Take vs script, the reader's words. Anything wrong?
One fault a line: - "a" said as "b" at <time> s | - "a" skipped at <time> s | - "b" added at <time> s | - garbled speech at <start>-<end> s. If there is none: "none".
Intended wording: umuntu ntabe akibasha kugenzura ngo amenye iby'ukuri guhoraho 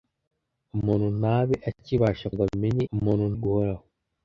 - "kugenzura" skipped at 2.3 s
- "iby'ukuri" said as "umuntu" at 2.9 s